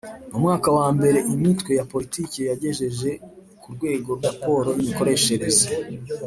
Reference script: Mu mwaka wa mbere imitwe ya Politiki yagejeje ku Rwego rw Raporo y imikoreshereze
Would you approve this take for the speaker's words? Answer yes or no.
yes